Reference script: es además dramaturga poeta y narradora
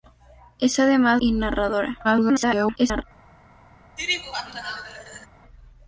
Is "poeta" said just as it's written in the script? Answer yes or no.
no